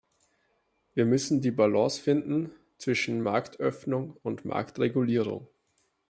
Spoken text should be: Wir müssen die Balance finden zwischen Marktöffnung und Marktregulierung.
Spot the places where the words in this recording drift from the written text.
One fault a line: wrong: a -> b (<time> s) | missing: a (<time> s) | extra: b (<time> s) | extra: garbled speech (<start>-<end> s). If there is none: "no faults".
no faults